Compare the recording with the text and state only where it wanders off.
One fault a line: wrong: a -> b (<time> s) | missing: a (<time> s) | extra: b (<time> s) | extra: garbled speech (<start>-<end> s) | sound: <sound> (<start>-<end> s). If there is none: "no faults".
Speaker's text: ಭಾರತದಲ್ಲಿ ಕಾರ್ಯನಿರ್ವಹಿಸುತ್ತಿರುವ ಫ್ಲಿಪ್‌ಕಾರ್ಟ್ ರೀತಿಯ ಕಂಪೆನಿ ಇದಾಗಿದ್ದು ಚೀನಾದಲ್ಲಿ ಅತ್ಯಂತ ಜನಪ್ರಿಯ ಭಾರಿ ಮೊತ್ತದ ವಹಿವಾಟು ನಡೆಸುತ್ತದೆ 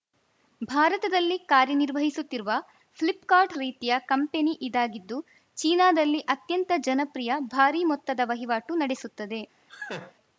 sound: laugh (9.7-10.1 s)